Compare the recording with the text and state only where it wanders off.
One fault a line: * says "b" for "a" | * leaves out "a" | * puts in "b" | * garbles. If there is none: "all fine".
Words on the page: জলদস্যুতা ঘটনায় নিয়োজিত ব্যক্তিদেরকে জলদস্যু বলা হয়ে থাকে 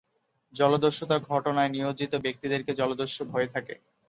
* leaves out "বলা"